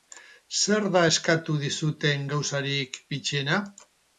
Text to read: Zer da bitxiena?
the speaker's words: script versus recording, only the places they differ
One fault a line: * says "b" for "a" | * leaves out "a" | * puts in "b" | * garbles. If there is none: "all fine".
* puts in "eskatu dizuten gauzarik"